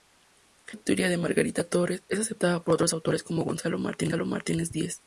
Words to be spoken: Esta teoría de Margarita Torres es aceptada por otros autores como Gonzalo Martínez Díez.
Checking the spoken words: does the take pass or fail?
pass